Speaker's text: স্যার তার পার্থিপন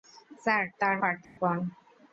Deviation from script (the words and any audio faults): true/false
true